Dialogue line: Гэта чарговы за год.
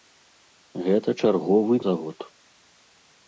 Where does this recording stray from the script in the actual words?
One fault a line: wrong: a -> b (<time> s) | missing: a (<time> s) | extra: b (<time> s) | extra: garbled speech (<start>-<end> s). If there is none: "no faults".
no faults